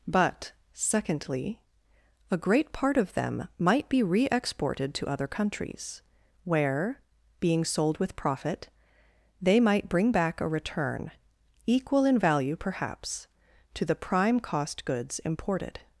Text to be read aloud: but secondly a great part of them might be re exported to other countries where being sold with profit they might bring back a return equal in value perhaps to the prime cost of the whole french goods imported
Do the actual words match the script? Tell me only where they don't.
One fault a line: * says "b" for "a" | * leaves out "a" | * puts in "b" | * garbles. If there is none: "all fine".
* leaves out "of the whole french"